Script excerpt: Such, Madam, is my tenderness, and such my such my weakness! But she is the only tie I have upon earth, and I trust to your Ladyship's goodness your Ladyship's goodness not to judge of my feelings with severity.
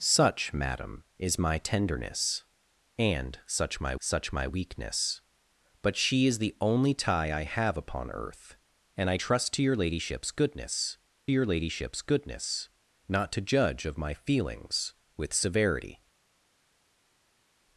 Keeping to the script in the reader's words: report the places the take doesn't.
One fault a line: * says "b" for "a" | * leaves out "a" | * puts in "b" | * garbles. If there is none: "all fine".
all fine